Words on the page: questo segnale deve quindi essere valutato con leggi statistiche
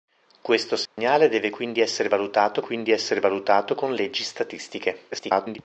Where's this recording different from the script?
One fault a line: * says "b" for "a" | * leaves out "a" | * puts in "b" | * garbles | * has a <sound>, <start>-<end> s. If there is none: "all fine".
* has a dropout, 0.9-1.0 s
* puts in "quindi essere valutato"
* garbles